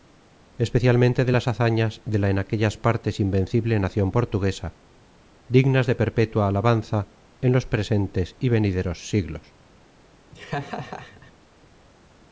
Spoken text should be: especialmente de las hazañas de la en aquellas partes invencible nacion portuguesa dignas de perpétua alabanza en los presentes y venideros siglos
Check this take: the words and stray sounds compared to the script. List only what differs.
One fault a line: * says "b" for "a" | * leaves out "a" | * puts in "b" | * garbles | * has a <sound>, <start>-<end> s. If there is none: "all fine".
* has a laugh, 10.3-11.3 s